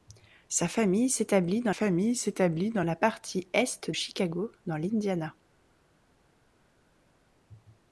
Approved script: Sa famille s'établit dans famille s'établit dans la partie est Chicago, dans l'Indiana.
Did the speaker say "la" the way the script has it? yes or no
yes